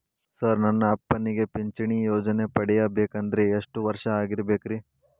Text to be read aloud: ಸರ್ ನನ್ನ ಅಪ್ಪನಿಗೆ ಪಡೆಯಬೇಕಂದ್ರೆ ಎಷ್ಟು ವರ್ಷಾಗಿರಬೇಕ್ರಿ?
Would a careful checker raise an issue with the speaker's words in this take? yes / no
yes